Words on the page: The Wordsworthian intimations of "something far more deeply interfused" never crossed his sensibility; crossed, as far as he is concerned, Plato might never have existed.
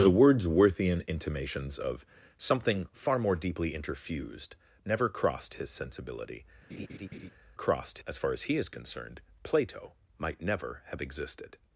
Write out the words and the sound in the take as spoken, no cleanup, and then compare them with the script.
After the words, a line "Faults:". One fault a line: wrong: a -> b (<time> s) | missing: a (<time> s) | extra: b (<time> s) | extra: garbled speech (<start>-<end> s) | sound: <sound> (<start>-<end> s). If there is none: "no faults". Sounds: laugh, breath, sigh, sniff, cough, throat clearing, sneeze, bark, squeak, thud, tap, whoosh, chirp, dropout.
The Wordsworthian intimations of "something far more deeply interfused" never crossed his sensibility; crossed, as far as he is concerned, Plato might never have existed.
Faults:
sound: laugh (6.7-7.3 s)